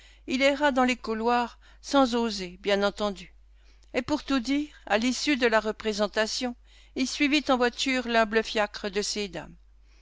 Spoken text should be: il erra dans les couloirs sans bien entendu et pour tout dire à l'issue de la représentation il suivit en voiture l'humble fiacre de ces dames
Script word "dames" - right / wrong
right